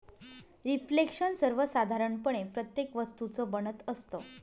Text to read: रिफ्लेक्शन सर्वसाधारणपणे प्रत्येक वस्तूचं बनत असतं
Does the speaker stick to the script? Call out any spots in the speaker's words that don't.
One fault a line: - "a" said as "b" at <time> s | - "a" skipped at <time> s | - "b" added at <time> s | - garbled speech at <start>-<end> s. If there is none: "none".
none